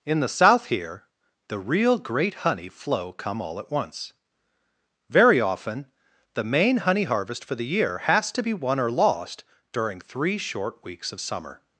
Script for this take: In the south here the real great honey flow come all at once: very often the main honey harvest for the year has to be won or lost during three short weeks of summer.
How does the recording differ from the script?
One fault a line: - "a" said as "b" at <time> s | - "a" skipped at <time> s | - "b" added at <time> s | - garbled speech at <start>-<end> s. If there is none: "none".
none